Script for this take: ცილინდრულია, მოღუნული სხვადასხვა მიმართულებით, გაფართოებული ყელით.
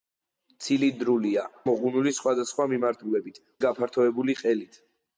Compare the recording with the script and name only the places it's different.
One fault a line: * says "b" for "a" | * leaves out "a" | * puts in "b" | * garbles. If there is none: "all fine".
all fine